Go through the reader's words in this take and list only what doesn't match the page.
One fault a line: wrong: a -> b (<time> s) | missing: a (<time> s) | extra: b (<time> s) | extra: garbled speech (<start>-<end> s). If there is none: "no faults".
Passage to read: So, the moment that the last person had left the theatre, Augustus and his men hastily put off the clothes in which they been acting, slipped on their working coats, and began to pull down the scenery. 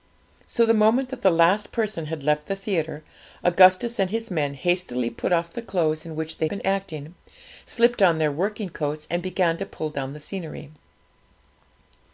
no faults